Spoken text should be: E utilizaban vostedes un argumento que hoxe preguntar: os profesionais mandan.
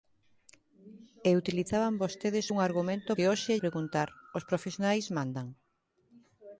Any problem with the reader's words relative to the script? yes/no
no